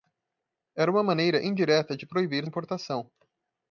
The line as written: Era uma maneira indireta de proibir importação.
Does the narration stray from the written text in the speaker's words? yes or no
no